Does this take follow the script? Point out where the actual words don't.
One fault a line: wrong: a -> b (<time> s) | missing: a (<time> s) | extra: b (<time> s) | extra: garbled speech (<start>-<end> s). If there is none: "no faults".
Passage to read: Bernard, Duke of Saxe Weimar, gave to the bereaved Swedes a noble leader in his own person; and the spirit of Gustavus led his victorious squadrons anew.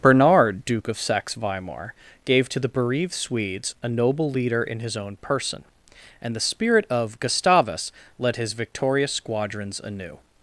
no faults